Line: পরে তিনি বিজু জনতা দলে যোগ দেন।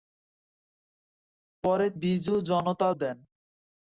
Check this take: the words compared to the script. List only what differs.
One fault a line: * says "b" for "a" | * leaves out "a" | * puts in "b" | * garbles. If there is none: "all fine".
* leaves out "তিনি"
* leaves out "দলে যোগ"